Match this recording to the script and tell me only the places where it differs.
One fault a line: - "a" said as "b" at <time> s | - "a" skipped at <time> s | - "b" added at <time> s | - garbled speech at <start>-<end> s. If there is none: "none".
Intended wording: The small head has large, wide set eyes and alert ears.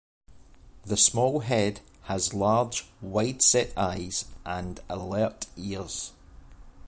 none